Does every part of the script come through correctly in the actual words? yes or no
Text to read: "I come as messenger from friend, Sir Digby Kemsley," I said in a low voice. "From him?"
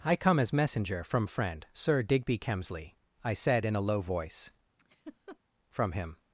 yes